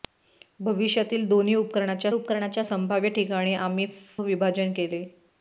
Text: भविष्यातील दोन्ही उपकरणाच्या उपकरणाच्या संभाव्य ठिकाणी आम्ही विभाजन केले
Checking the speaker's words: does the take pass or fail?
pass